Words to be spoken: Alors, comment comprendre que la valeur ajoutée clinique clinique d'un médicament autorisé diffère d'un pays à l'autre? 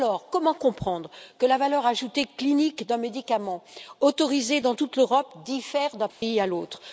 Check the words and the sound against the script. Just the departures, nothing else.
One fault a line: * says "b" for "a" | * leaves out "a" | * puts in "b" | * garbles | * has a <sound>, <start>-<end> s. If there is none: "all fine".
* leaves out "clinique"
* puts in "dans toute l'Europe"
* has a dropout, 6.1-6.2 s